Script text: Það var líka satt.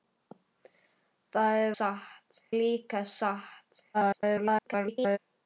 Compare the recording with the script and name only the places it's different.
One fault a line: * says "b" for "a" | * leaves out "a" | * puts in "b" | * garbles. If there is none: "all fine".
* says "satt" for "var"
* garbles